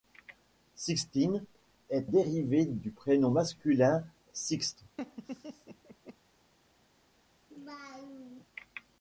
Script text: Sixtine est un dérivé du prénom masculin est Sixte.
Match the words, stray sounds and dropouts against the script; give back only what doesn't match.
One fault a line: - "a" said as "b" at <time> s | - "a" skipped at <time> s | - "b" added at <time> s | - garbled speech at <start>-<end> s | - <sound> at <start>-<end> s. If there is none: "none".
- "un" skipped at 2.1 s
- "est" skipped at 4.1 s
- laugh at 5.0-6.2 s
- laugh at 7.5-8.5 s